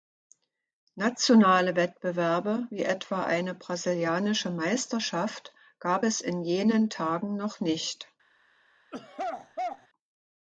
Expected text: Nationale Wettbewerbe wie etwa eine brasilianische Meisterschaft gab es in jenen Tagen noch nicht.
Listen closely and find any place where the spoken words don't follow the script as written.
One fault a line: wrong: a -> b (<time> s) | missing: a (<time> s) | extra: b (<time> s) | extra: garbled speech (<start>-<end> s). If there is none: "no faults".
no faults